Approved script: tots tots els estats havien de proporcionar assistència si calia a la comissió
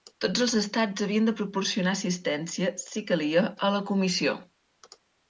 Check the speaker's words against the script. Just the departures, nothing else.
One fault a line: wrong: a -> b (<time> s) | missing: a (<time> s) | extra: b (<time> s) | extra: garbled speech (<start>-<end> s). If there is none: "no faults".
missing: tots (0.4 s)